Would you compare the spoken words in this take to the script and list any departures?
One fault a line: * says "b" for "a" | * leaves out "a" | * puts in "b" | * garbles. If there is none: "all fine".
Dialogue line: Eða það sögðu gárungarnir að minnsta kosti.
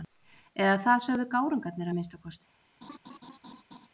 all fine